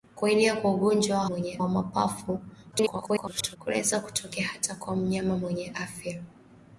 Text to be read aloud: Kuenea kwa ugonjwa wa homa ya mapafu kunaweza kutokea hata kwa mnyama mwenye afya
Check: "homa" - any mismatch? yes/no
yes